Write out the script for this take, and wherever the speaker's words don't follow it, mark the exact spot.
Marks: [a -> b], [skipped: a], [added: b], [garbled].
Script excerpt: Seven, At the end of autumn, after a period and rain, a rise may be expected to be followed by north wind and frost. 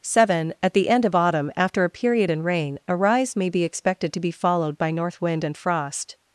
Seven, At the end of autumn, after a period and rain, a rise may be expected to be followed by north wind and frost.